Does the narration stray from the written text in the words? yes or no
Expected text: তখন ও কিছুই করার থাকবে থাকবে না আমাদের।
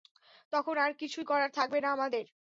yes